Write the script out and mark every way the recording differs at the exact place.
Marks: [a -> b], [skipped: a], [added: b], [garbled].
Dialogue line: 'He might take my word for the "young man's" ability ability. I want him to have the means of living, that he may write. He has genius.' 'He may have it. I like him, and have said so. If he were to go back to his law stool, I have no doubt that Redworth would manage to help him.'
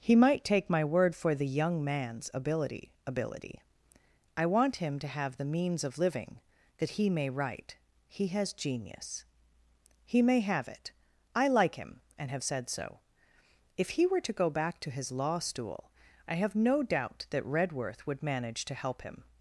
'He might take my word for the "young man's" ability ability. I want him to have the means of living, that he may write. He has genius.' 'He may have it. I like him, and have said so. If he were to go back to his law stool, I have no doubt that Redworth would manage to help him.'